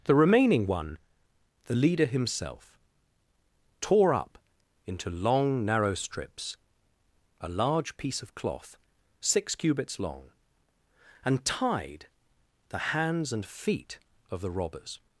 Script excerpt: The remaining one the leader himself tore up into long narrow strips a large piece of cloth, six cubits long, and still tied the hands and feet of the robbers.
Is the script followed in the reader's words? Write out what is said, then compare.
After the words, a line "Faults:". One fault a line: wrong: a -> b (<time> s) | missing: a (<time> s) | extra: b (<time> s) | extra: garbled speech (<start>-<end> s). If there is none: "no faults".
The remaining one the leader himself tore up into long narrow strips a large piece of cloth, six cubits long, and tied the hands and feet of the robbers.
Faults:
missing: still (11.4 s)